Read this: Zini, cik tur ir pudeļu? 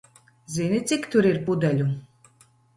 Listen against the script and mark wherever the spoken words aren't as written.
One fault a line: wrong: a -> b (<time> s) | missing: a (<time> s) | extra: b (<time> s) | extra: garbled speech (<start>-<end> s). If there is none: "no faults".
no faults